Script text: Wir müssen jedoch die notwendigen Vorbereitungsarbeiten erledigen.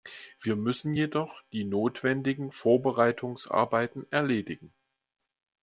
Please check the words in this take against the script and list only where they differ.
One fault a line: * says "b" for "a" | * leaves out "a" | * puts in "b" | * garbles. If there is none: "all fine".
all fine